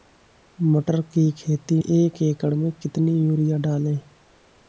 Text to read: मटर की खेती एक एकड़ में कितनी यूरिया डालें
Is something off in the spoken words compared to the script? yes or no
no